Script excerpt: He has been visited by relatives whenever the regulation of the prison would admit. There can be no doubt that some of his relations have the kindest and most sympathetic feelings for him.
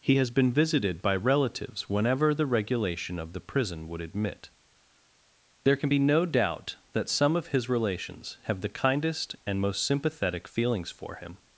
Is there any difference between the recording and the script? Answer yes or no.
no